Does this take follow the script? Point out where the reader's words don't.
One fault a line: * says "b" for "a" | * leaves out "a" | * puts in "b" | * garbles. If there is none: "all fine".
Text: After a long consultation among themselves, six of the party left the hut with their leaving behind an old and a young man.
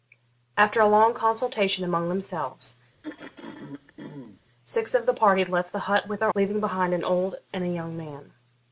all fine